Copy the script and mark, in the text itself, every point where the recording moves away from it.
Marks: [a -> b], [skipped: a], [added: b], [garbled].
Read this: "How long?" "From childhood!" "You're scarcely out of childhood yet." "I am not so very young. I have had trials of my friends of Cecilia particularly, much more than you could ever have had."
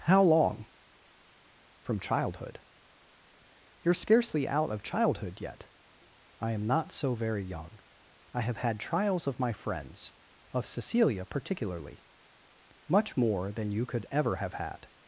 "How long?" "From childhood!" "You're scarcely out of childhood yet." "I am not so very young. I have had trials of my friends of Cecilia particularly, much more than you could ever have had."